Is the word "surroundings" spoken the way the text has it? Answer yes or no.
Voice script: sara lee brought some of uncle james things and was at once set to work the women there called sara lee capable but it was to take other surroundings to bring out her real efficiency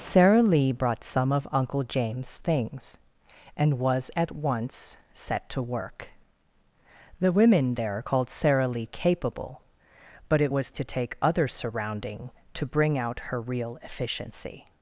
no